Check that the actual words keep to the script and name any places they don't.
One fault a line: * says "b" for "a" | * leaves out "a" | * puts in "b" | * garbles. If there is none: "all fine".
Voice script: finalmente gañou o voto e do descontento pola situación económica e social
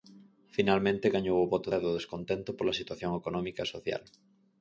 all fine